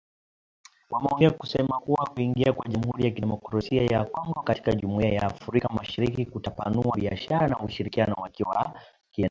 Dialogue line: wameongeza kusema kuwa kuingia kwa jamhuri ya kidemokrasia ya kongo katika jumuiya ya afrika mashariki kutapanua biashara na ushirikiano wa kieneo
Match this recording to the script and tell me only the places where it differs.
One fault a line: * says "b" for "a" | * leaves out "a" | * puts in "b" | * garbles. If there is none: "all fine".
all fine